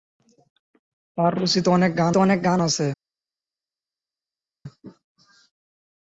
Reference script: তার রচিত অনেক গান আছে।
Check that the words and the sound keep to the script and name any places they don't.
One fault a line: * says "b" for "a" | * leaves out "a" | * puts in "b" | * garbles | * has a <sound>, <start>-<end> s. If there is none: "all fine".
* puts in "অনেক গান"